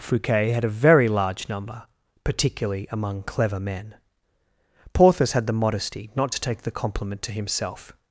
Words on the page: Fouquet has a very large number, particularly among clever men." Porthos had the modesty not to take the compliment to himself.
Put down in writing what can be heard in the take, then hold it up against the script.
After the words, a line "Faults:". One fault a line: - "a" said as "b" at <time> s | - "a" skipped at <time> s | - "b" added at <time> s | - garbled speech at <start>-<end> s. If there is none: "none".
Fouquet had a very large number, particularly among clever men." Porthos had the modesty not to take the compliment to himself.
Faults:
- "has" said as "had" at 0.5 s